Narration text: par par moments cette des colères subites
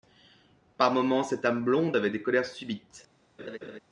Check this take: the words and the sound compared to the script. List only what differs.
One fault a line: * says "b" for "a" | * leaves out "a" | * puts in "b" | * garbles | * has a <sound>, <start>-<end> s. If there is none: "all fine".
* leaves out "par"
* puts in "âme blonde avait"
* has a laugh, 3.4-3.8 s